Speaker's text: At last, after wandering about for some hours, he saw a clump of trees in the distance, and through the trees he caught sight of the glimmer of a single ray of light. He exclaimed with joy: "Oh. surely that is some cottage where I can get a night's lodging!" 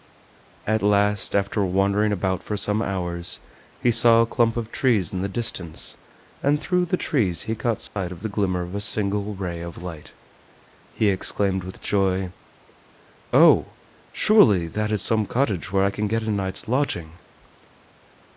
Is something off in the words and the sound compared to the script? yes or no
yes